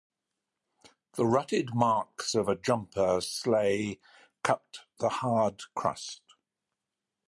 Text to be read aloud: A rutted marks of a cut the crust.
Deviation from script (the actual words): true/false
true